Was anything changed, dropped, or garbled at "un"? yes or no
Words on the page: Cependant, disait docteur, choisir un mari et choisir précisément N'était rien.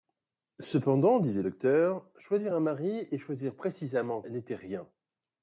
no